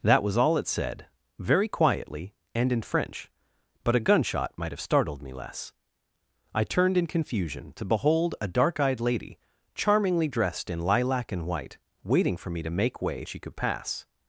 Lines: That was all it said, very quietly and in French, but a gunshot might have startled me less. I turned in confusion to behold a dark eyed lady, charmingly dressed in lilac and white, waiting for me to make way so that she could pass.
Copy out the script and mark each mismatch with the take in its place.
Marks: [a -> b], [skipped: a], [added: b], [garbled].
That was all it said, very quietly and in French, but a gunshot might have startled me less. I turned in confusion to behold a dark eyed lady, charmingly dressed in lilac and white, waiting for me to make way [skipped: so that] she could pass.